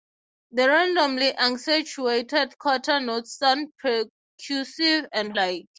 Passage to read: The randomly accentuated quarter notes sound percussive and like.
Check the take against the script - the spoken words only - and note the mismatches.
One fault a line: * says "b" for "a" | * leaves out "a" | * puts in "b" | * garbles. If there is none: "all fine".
all fine